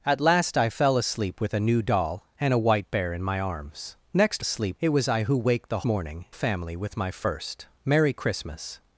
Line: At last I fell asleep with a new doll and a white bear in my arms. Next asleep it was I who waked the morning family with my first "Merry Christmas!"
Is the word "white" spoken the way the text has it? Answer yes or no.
yes